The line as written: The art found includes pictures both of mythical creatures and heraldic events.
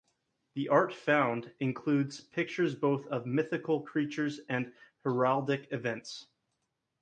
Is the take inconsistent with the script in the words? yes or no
no